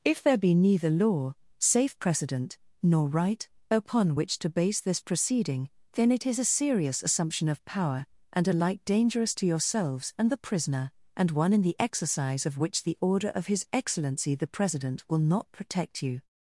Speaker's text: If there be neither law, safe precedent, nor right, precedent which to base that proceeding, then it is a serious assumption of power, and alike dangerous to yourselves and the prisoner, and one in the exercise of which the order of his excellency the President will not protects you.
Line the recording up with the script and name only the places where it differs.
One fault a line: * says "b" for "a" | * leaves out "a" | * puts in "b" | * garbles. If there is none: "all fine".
* says "upon" for "precedent"
* says "this" for "that"
* says "protect" for "protects"